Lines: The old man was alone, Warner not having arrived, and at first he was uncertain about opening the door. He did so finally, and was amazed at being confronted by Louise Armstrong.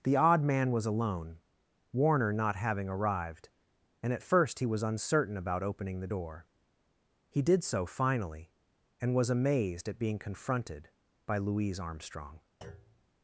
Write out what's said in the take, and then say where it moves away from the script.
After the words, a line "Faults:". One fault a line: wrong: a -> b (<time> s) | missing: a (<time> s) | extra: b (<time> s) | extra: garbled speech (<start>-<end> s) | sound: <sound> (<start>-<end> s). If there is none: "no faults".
The odd man was alone, Warner not having arrived, and at first he was uncertain about opening the door. He did so finally, and was amazed at being confronted by Louise Armstrong.
Faults:
wrong: old -> odd (0.1 s)
sound: thud (12.6-13.1 s)